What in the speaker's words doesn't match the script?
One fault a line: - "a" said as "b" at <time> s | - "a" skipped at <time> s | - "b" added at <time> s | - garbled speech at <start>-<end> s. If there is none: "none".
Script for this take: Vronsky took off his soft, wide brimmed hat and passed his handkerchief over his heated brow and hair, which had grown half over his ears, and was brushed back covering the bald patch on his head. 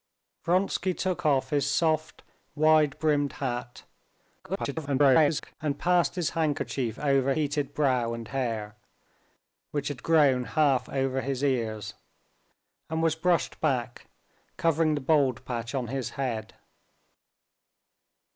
- garbled speech at 4.4-5.6 s
- "his" skipped at 7.3 s